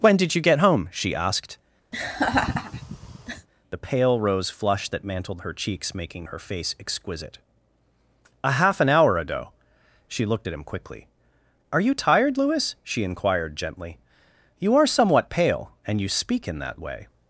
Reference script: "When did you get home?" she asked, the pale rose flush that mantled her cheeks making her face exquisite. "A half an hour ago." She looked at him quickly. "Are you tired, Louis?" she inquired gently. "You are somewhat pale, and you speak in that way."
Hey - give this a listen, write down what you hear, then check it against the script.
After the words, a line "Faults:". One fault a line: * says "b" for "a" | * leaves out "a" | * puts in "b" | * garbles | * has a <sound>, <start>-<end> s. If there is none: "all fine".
"When did you get home?" she asked, the pale rose flush that mantled her cheeks making her face exquisite. "A half an hour ago." She looked at him quickly. "Are you tired, Louis?" she inquired gently. "You are somewhat pale, and you speak in that way."
Faults:
* has a laugh, 1.9-3.5 s